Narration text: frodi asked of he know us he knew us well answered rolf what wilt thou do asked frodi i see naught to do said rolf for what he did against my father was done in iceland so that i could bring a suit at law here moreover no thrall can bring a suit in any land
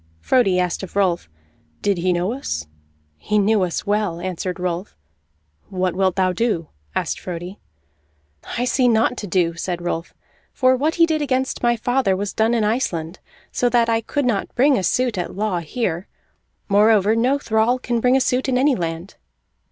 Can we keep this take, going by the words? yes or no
no